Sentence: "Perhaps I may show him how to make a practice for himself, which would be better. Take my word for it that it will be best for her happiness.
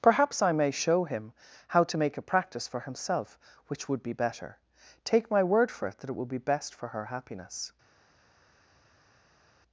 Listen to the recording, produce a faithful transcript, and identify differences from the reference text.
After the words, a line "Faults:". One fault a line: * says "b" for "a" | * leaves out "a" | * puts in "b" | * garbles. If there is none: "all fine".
"Perhaps I may show him how to make a practice for himself, which would be better. Take my word for it that it will be best for her happiness.
Faults:
all fine